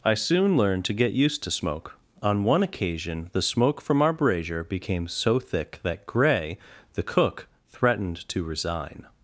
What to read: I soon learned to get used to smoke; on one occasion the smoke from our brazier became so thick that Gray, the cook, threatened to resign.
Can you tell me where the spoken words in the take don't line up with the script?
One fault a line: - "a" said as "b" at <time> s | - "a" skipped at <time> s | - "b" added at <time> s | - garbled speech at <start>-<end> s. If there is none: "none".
none